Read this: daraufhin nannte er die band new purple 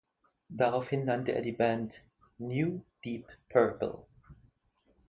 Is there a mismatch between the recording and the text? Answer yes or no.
yes